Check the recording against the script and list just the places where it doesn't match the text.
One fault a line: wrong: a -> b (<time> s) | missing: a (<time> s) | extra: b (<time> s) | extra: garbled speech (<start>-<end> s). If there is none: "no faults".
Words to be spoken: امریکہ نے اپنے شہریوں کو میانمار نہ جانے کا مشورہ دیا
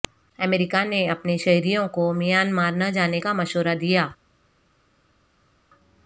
no faults